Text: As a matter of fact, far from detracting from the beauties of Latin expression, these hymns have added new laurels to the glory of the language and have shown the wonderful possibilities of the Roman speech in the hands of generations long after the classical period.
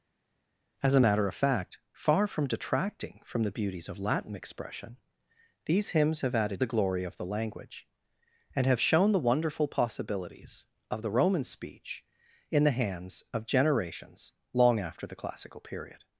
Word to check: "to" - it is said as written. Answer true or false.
false